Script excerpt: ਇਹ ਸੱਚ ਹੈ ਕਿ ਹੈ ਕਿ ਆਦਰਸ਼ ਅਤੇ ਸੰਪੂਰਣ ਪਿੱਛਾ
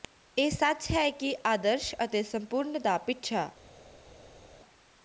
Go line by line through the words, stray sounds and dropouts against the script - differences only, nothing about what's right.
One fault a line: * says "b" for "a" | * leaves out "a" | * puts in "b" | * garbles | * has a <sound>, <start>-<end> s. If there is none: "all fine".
* leaves out "ਹੈ ਕਿ"
* puts in "ਦਾ"